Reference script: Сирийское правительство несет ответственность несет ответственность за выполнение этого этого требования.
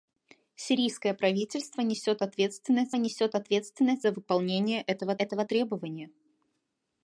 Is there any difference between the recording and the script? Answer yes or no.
no